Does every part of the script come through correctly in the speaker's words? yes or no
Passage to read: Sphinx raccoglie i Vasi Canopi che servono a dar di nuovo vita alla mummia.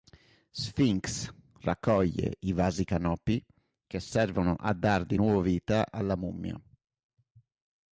yes